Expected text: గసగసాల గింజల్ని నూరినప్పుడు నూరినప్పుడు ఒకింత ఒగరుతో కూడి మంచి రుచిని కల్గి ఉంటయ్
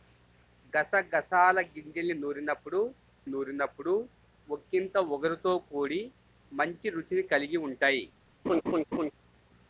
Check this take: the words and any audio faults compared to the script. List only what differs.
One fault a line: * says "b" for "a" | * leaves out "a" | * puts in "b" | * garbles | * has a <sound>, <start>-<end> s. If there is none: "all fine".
* has a laugh, 8.5-9.1 s